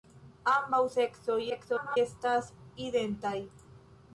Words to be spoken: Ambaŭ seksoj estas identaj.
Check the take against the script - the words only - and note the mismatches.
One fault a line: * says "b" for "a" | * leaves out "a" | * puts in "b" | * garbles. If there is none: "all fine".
* garbles